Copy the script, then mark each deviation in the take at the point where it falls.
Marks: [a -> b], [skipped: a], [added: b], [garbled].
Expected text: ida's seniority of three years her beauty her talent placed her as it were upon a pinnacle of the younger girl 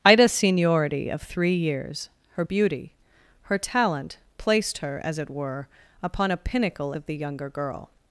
ida's seniority of three years her beauty her talent placed her as it were upon a pinnacle of the younger girl